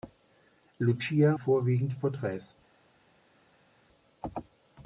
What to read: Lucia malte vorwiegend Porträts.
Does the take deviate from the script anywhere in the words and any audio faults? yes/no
yes